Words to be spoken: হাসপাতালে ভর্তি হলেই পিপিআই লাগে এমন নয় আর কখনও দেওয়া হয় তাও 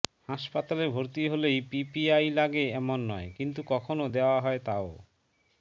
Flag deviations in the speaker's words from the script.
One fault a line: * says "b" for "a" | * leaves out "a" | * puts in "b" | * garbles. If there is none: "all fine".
* says "কিন্তু" for "আর"